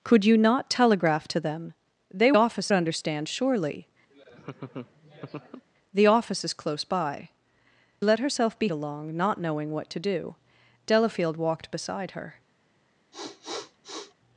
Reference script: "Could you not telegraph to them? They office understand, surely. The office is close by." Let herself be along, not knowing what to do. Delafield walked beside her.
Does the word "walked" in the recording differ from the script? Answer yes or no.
no